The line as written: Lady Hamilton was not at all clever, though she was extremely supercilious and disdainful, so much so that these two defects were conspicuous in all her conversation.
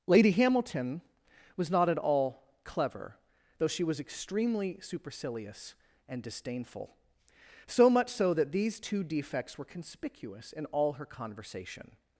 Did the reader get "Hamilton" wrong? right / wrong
right